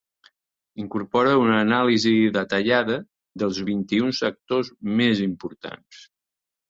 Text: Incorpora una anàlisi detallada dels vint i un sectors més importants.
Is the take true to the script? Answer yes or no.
yes